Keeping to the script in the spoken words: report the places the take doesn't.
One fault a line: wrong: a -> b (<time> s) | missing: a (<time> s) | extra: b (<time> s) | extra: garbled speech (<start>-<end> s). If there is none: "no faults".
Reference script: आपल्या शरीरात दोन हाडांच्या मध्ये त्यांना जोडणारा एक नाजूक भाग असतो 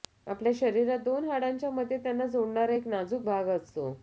no faults